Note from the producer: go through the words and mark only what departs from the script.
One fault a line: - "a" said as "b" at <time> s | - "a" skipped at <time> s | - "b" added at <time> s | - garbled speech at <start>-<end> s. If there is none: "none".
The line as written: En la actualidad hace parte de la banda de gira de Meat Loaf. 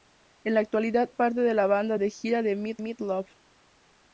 - "hace" skipped at 1.1 s
- "Meat" added at 2.8 s